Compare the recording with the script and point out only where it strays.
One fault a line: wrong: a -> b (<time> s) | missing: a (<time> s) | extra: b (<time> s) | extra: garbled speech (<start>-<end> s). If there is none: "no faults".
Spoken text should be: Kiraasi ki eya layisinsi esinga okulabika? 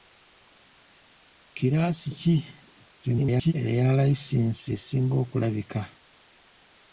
extra: garbled speech (3.0-3.5 s)